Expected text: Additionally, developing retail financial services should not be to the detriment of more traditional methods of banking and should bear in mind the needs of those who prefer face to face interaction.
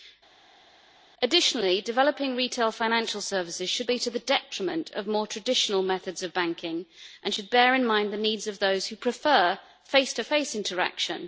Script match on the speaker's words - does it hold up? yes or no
no